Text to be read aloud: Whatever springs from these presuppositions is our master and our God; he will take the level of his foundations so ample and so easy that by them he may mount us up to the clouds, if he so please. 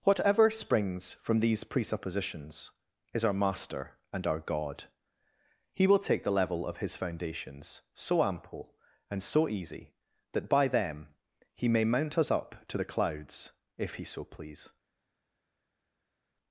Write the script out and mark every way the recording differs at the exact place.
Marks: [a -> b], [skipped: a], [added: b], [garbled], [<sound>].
Whatever springs from these presuppositions is our master and our God; he will take the level of his foundations so ample and so easy that by them he may mount us up to the clouds, if he so please.